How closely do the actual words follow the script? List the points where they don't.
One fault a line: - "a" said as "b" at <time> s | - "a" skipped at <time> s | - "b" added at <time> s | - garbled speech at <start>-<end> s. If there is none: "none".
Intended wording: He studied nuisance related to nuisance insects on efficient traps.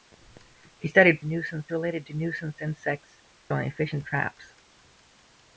none